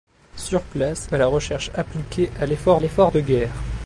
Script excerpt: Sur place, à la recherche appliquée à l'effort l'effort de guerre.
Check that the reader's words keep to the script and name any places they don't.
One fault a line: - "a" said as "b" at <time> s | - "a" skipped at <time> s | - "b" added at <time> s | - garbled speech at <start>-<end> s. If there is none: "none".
none